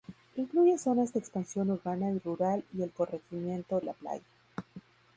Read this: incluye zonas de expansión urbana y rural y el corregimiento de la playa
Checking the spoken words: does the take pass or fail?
fail